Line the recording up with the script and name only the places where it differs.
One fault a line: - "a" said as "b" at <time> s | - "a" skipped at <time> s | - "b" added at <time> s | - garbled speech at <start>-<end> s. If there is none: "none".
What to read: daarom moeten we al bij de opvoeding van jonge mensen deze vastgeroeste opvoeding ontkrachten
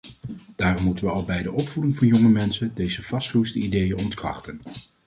- "opvoeding" said as "ideeën" at 3.6 s